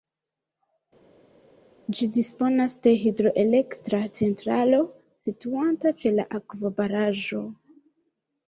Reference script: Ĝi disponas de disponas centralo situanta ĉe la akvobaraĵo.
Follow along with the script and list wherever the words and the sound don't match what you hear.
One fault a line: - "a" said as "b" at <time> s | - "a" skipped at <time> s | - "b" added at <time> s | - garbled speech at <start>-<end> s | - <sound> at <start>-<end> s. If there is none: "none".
- "disponas" said as "hidroelektra" at 3.0 s